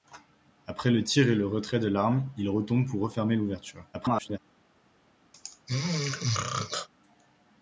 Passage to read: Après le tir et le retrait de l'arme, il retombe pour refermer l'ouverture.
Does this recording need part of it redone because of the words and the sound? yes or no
yes